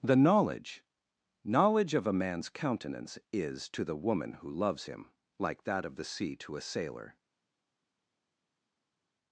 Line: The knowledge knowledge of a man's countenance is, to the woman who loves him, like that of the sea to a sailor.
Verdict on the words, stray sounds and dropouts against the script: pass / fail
pass